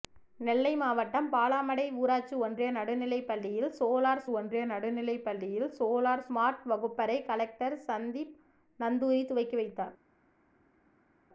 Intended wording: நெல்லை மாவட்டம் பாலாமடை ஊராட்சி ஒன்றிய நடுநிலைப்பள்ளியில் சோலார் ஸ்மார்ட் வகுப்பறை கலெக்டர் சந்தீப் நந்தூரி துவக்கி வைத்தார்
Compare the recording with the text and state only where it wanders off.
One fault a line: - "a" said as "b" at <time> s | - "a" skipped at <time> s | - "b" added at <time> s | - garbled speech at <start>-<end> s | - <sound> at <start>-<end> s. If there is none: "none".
- "ஒன்றிய நடுநிலைப்பள்ளியில் சோலார்" added at 4.3 s